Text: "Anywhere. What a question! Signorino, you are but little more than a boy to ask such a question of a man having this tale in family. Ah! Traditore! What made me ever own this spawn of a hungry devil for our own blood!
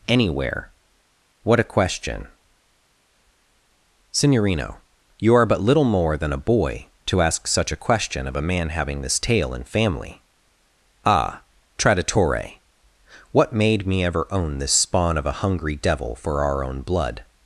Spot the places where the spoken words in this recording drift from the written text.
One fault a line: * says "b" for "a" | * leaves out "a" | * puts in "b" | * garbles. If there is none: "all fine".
all fine